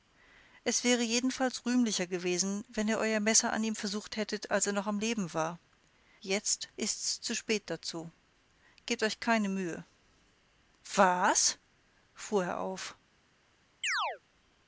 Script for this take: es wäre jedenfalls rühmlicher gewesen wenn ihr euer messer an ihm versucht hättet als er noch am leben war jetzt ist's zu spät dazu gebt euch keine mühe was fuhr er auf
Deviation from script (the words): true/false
false